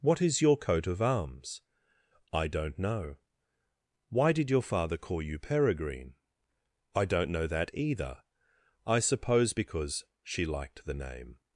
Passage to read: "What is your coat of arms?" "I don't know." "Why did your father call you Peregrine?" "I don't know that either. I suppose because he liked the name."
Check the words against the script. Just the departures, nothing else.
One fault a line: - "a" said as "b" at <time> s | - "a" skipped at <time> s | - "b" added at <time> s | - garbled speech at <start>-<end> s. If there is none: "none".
- "he" said as "she" at 10.2 s